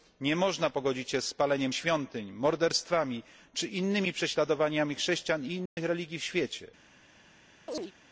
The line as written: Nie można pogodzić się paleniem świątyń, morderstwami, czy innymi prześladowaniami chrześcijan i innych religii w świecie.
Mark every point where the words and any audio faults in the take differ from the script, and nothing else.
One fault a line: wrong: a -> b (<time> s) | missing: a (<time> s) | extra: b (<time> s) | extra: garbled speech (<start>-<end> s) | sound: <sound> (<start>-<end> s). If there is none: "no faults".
extra: z (1.2 s)
sound: dropout (5.7-5.8 s)
sound: chirp (7.7-7.9 s)